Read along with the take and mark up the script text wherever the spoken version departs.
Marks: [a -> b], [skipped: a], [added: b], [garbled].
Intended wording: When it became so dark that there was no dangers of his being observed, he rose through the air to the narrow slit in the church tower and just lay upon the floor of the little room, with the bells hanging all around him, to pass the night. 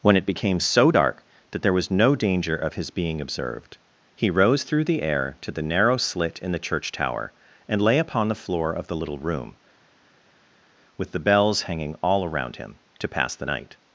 When it became so dark that there was no [dangers -> danger] of his being observed, he rose through the air to the narrow slit in the church tower and [skipped: just] lay upon the floor of the little room, with the bells hanging all around him, to pass the night.